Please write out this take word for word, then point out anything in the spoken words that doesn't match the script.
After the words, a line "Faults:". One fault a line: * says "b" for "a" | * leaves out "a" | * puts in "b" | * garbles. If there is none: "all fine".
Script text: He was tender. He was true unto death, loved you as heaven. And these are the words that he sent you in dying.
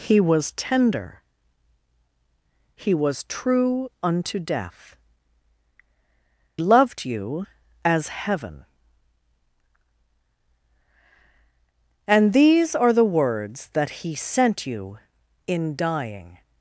He was tender. He was true unto death, loved you as heaven. And these are the words that he sent you in dying.
Faults:
all fine